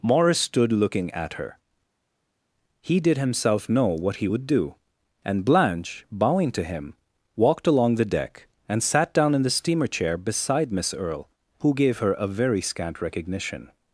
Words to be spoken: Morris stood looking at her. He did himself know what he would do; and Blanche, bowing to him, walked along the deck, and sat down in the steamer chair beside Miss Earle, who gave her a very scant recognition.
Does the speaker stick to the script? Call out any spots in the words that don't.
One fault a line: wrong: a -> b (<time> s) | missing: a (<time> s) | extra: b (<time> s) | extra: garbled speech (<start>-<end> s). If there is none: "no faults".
no faults